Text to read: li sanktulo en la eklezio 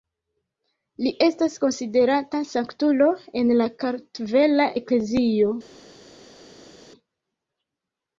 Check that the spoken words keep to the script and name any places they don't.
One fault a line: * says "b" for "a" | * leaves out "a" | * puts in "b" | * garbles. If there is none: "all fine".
* puts in "estas konsiderata"
* puts in "kartvela"